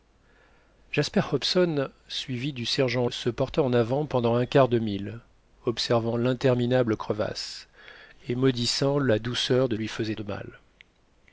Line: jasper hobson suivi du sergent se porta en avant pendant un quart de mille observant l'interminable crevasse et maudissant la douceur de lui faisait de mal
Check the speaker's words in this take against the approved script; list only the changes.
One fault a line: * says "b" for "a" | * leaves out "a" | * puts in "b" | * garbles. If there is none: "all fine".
all fine